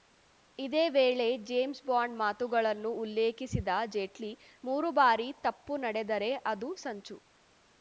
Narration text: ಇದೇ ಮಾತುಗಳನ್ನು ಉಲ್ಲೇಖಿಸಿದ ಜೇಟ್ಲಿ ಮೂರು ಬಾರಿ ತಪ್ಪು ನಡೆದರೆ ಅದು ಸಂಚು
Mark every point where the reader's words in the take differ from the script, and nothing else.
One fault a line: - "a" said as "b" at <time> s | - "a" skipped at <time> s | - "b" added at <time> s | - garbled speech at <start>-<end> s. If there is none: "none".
- "ವೇಳೆ ಜೇಮ್ಸ್ ಬಾಂಡ್" added at 0.9 s